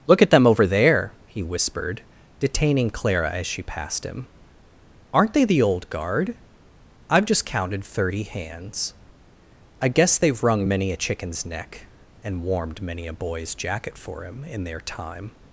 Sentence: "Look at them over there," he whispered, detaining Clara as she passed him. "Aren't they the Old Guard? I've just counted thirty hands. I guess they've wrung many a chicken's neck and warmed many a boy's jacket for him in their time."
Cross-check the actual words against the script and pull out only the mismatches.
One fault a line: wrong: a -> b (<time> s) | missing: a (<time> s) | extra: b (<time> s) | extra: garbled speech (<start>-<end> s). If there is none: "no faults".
no faults